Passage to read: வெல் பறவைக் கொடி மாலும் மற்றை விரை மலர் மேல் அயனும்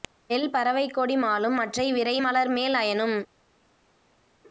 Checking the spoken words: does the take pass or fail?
pass